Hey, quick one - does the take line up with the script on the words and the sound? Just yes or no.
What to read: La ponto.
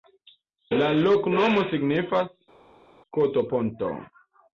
no